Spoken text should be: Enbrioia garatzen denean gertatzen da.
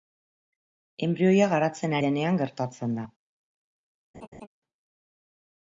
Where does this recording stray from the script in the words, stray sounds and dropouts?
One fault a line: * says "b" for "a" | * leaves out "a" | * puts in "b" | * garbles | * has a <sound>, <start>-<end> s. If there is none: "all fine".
* has a laugh, 4.1-4.5 s